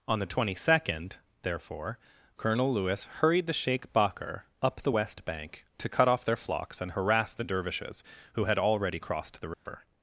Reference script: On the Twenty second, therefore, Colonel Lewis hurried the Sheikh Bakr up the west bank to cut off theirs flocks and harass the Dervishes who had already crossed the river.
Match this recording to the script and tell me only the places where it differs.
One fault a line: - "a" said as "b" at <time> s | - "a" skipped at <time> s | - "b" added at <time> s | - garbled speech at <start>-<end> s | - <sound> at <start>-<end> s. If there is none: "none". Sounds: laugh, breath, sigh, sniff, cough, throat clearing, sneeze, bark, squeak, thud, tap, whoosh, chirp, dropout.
- "theirs" said as "their" at 6.2 s
- dropout at 9.5-9.7 s